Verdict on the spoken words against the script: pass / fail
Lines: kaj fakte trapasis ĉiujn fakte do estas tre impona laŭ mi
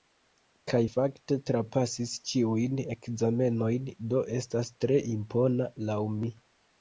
fail